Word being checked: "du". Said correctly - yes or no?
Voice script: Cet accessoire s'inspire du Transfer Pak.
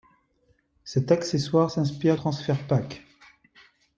no